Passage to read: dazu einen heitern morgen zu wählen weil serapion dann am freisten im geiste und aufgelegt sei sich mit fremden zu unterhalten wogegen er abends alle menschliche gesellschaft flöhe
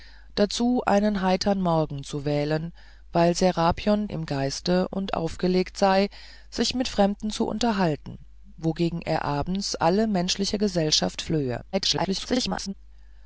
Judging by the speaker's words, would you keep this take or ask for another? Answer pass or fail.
fail